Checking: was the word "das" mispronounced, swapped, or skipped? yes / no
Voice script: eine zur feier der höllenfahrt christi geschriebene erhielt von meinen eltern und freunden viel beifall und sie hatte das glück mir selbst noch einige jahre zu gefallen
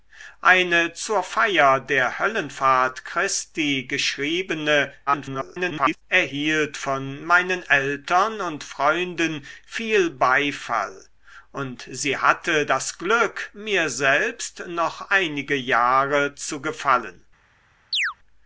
no